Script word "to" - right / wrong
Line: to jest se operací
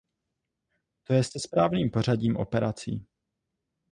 right